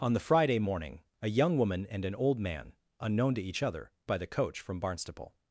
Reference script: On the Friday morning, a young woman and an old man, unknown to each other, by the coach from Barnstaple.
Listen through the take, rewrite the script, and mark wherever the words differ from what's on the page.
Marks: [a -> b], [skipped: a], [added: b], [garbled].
On the Friday morning, a young woman and an old man, unknown to each other, by the coach from Barnstaple.